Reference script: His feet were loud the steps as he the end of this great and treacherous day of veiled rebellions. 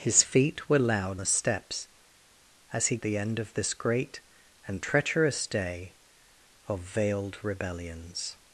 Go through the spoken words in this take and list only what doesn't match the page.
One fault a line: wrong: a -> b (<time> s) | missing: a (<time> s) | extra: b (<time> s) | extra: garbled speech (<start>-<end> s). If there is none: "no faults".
no faults